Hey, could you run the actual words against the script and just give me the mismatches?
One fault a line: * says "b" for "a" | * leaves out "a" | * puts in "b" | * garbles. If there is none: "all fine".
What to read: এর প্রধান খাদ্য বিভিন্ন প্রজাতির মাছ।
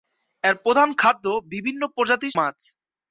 all fine